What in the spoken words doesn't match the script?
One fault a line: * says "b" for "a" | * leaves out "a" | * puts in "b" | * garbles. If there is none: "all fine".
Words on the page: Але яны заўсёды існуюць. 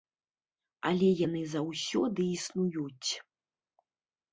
all fine